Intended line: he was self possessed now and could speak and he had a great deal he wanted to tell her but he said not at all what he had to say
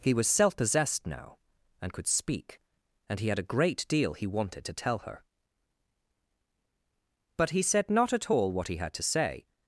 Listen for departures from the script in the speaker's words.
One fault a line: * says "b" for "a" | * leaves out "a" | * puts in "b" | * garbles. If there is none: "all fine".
all fine